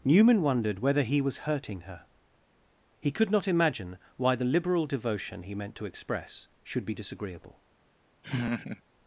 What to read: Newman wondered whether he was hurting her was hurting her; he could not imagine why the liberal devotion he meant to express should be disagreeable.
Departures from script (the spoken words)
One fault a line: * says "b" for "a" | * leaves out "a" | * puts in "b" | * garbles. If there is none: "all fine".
* leaves out "was hurting her"